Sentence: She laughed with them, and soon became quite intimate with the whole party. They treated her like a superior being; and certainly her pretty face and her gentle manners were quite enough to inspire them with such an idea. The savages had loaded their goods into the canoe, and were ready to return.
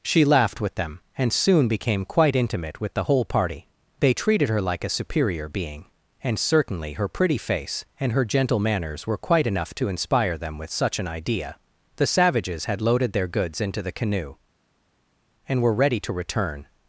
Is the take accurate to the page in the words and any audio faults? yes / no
yes